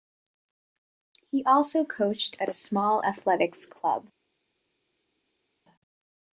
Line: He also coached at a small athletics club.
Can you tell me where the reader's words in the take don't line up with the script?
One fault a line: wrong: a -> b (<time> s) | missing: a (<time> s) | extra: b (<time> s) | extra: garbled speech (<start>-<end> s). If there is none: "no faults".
no faults